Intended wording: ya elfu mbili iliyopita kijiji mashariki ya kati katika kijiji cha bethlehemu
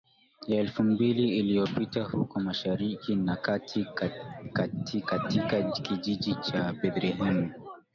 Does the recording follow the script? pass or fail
fail